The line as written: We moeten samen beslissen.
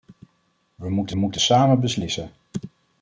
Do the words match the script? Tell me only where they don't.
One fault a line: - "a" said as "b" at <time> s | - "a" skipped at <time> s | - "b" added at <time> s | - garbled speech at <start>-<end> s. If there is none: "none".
- "moeten" added at 1.1 s